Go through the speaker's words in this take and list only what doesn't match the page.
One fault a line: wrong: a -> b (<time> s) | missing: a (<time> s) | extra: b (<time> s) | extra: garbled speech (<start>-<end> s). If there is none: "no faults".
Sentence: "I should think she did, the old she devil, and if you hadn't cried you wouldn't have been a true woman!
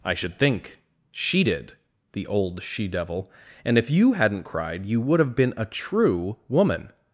wrong: wouldn't -> would (5.0 s)